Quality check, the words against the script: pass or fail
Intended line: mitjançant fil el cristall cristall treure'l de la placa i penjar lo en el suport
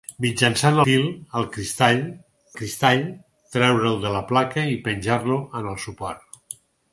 pass